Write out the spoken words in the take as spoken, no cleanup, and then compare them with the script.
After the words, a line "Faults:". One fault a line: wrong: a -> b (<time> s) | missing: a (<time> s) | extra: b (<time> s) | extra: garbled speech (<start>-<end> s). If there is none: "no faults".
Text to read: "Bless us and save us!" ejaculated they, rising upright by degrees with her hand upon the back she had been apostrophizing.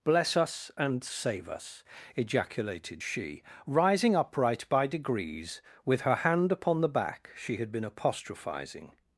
"Bless us and save us!" ejaculated she, rising upright by degrees with her hand upon the back she had been apostrophizing.
Faults:
wrong: they -> she (3.0 s)